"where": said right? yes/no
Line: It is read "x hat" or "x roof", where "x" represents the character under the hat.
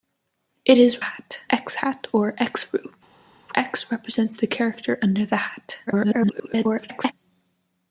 no